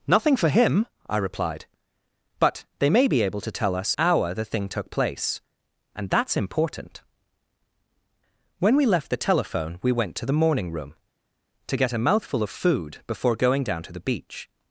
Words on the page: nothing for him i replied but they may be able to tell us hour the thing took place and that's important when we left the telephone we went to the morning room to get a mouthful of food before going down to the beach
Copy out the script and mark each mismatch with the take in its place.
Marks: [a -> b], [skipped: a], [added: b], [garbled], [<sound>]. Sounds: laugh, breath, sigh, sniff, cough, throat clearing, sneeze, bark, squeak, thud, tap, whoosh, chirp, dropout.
nothing for him i replied but they may be able to tell us hour the thing took place and that's important when we left the telephone we went to the morning room to get a mouthful of food before going down to the beach